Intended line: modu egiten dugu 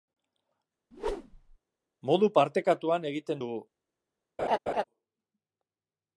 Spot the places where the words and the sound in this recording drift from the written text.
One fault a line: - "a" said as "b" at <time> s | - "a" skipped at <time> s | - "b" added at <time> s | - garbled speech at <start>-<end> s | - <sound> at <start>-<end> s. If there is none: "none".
- whoosh at 0.9-1.6 s
- "partekatuan" added at 2.4 s
- laugh at 4.4-4.8 s